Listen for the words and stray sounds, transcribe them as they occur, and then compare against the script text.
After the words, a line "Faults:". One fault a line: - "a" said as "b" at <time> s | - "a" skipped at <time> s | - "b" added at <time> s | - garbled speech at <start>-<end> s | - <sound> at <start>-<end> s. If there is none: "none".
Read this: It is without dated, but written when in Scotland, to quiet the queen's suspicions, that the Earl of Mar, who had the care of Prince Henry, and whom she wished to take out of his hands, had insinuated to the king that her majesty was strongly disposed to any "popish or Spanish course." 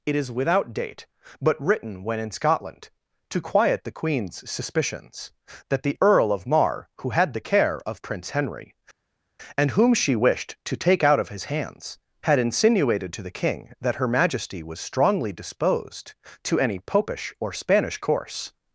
It is without date, but written when in Scotland, to quiet the queen's suspicions, that the Earl of Mar, who had the care of Prince Henry, and whom she wished to take out of his hands, had insinuated to the king that her majesty was strongly disposed to any "popish or Spanish course."
Faults:
- "dated" said as "date" at 0.7 s